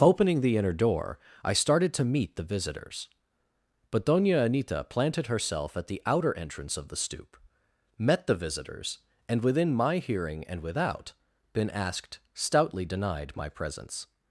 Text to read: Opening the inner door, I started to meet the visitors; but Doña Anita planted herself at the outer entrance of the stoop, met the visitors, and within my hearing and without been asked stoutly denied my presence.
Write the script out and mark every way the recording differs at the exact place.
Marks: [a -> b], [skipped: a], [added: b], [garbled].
Opening the inner door, I started to meet the visitors; but Doña Anita planted herself at the outer entrance of the stoop, met the visitors, and within my hearing and without been asked stoutly denied my presence.